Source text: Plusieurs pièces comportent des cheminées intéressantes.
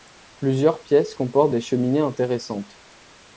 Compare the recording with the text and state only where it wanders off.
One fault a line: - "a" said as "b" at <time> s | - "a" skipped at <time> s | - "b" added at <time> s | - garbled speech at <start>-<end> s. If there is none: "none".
none